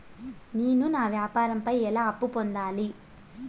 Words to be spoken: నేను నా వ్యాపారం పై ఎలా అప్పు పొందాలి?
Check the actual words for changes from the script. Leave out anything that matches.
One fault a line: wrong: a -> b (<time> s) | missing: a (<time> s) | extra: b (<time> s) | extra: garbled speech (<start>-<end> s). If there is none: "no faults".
no faults